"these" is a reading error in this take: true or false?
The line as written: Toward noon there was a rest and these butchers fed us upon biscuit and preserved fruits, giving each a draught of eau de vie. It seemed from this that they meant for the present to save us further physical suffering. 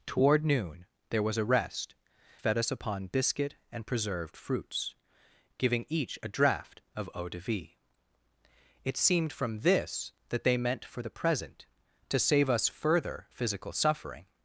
true